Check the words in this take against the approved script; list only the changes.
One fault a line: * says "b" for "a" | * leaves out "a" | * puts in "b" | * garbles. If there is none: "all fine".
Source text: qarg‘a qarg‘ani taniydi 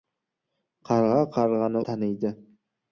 all fine